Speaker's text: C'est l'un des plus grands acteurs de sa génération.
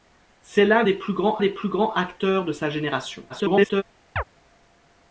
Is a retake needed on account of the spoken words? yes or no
yes